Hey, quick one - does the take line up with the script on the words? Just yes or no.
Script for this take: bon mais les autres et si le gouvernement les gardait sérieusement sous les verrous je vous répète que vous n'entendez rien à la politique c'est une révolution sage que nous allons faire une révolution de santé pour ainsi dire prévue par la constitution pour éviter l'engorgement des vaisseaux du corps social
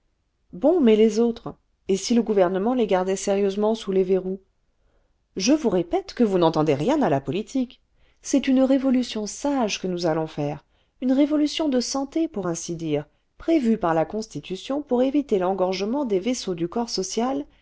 yes